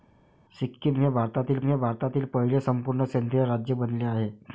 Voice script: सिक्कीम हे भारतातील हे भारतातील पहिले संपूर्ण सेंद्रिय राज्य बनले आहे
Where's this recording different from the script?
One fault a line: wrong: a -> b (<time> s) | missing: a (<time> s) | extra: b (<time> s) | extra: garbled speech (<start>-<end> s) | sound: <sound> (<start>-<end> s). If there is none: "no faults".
no faults